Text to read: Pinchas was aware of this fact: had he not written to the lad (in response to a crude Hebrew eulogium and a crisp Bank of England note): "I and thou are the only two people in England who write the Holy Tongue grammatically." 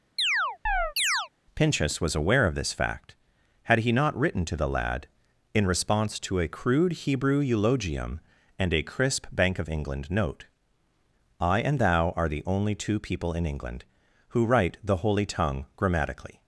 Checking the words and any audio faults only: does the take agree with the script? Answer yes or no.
no